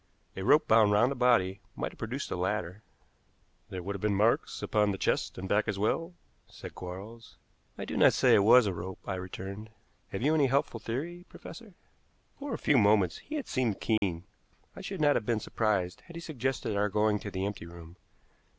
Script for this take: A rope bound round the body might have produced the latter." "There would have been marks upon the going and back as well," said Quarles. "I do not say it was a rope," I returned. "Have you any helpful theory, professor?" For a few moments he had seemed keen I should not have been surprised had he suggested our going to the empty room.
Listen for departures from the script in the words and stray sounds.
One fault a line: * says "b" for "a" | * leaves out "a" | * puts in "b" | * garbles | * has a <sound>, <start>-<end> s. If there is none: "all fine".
* says "chest" for "going"
* has a dropout, 14.0-14.0 s